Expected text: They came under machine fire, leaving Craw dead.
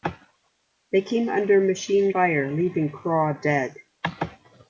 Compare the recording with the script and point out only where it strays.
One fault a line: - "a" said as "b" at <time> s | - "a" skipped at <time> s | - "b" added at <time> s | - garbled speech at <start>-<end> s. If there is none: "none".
none